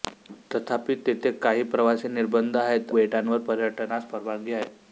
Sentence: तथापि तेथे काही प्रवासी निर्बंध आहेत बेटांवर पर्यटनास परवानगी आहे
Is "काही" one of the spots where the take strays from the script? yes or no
no